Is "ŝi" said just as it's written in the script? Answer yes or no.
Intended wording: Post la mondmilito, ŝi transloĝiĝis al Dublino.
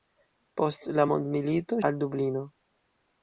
no